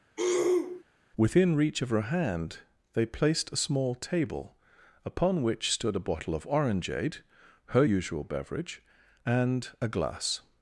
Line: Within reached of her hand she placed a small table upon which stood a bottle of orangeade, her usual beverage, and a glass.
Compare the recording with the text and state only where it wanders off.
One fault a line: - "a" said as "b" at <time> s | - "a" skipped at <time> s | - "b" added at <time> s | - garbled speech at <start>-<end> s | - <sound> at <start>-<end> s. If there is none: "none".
- throat clearing at 0.2-0.8 s
- "reached" said as "reach" at 1.5 s
- "she" said as "they" at 2.9 s